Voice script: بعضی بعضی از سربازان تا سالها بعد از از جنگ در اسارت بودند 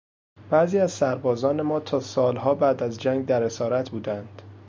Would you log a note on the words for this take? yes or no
yes